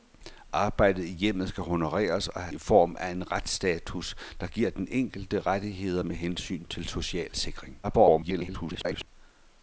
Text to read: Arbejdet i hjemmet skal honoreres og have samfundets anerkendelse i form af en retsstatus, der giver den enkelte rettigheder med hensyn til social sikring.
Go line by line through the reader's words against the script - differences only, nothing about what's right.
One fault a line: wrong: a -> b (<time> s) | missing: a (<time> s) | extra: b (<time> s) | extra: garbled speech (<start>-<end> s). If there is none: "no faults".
missing: samfundets anerkendelse (2.5 s)
extra: garbled speech (7.8-9.1 s)